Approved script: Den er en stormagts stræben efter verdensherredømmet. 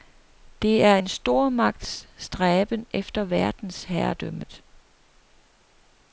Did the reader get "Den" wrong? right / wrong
wrong